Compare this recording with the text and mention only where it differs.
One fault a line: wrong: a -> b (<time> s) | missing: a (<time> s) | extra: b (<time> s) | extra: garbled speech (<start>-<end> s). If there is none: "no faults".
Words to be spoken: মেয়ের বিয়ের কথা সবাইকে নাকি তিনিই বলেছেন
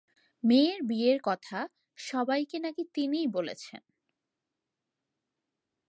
no faults